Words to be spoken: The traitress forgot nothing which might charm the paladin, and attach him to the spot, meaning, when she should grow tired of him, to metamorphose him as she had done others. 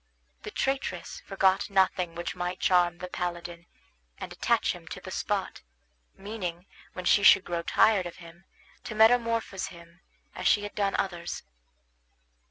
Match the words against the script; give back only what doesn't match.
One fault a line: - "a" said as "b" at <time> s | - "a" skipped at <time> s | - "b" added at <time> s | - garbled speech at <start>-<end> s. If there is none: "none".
none